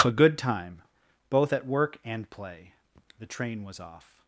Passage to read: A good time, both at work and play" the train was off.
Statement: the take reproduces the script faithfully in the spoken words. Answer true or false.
true